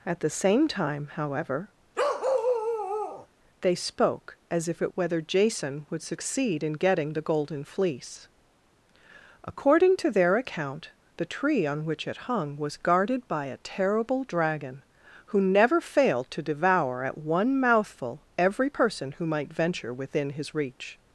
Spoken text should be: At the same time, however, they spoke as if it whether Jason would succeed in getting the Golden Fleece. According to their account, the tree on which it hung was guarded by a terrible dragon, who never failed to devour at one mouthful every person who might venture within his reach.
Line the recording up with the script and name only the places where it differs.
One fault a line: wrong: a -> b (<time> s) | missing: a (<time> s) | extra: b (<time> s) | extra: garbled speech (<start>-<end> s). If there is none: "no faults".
no faults